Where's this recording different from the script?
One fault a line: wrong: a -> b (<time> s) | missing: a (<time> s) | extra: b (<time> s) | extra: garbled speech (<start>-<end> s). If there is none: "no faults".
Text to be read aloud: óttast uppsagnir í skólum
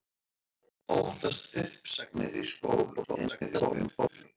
extra: garbled speech (3.0-4.2 s)